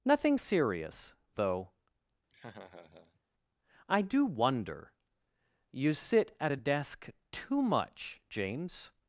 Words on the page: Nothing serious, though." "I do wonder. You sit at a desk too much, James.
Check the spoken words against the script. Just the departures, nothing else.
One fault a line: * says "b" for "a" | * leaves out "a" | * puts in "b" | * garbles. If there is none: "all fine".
all fine